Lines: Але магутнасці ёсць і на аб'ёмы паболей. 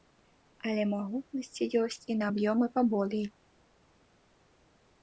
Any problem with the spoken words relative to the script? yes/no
no